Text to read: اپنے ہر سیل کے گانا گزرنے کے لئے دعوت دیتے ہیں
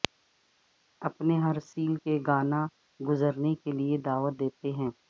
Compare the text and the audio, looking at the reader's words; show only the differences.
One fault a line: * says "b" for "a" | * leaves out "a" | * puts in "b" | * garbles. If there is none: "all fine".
all fine